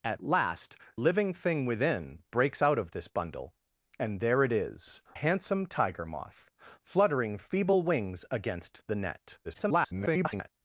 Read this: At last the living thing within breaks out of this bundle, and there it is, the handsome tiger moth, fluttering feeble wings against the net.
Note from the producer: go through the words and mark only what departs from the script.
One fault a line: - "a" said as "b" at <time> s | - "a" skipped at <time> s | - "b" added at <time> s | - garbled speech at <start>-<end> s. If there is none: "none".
- "the" skipped at 0.8 s
- "the" skipped at 5.0 s
- garbled speech at 9.4-10.5 s